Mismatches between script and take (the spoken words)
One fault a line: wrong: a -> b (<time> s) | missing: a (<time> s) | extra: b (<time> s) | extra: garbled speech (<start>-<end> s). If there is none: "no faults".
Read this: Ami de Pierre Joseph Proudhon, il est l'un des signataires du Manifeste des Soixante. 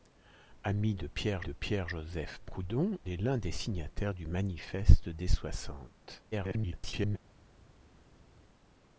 extra: de Pierre (1.4 s)
missing: il (3.0 s)
extra: garbled speech (6.3-7.2 s)